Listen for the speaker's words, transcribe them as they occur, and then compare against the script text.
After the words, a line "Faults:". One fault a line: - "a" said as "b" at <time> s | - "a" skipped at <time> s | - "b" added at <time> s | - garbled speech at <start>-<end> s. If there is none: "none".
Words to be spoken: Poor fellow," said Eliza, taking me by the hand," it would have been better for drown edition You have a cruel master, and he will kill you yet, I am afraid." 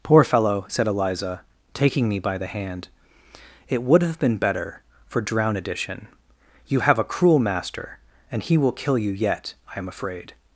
Poor fellow," said Eliza, taking me by the hand," it would have been better for drown edition You have a cruel master, and he will kill you yet, I am afraid."
Faults:
none